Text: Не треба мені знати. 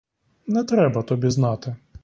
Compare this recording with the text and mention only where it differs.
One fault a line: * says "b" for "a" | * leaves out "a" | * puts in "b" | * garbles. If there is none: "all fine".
* says "тобі" for "мені"